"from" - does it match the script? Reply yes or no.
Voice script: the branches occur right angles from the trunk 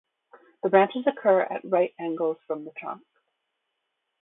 yes